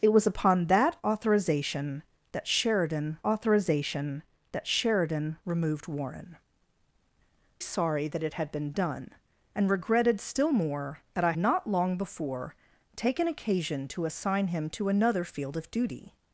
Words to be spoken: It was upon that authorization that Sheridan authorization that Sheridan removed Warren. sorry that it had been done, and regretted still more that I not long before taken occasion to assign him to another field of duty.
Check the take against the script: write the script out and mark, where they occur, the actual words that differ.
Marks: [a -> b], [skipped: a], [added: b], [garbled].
It was upon that authorization that Sheridan authorization that Sheridan removed Warren. sorry that it had been done, and regretted still more that I not long before taken occasion to assign him to another field of duty.